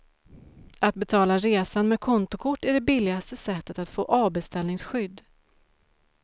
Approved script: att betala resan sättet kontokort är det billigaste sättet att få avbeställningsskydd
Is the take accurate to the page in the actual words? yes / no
no